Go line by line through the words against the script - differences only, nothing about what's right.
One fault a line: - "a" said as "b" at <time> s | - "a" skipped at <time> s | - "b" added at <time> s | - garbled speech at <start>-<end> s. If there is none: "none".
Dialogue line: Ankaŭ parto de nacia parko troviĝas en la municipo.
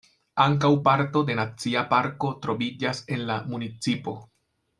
none